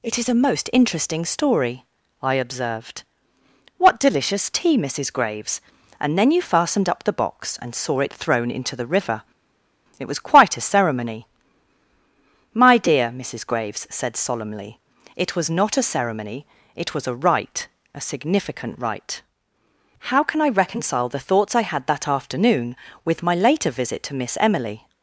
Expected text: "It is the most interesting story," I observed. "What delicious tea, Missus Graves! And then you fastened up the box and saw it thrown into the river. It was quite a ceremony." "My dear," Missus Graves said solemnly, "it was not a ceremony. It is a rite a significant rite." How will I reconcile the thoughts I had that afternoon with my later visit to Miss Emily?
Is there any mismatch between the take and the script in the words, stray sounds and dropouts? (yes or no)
yes